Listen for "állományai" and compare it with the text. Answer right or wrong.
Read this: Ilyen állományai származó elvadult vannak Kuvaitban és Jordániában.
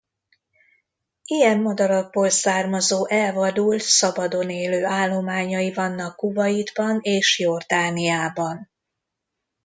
wrong